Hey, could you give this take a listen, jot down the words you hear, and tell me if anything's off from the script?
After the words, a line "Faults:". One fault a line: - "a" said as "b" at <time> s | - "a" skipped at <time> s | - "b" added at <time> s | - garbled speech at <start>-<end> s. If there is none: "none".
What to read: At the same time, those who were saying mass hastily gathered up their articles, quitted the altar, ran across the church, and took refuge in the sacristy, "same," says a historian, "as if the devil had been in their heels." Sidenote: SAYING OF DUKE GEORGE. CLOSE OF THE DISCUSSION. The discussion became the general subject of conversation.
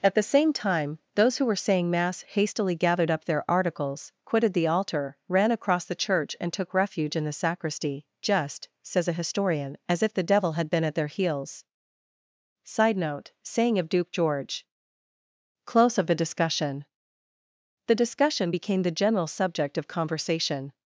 At the same time, those who were saying mass hastily gathered up their articles, quitted the altar, ran across the church, and took refuge in the sacristy, "just," says a historian, "as if the devil had been at their heels." Sidenote: SAYING OF DUKE GEORGE. CLOSE OF THE DISCUSSION. The discussion became the general subject of conversation.
Faults:
- "same" said as "just" at 8.2 s
- "in" said as "at" at 10.8 s